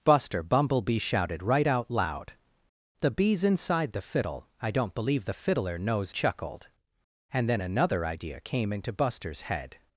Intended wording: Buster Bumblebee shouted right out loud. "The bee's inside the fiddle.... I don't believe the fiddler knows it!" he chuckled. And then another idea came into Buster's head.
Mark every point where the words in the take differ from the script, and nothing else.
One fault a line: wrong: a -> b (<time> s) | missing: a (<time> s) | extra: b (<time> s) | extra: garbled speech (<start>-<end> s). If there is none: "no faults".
missing: it he (6.1 s)